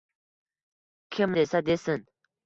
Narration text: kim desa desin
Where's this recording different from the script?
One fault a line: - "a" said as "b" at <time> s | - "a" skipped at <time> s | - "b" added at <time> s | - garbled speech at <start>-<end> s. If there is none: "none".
none